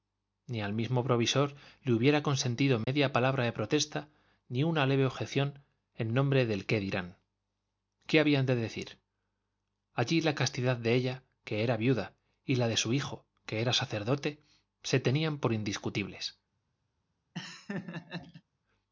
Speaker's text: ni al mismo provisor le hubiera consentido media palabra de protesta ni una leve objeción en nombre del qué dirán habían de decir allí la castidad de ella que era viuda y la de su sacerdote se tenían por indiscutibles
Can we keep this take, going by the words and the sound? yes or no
no